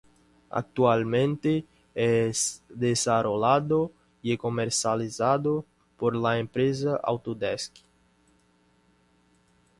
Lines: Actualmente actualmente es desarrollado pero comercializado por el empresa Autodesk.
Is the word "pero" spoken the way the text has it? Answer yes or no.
no